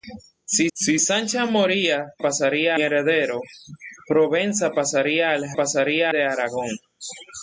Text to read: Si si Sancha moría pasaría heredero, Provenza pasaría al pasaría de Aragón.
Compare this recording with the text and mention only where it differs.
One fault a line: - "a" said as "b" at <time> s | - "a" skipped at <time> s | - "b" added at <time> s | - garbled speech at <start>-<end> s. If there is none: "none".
none